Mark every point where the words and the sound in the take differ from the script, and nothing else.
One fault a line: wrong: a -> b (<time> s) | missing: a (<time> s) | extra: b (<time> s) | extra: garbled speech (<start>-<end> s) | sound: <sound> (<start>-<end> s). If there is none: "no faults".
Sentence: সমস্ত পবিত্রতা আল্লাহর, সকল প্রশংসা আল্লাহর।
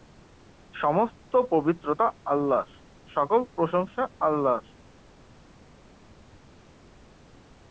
no faults